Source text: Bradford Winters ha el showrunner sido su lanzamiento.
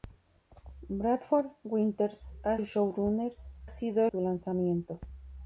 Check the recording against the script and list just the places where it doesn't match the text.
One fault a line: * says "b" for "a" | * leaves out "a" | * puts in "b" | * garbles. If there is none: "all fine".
all fine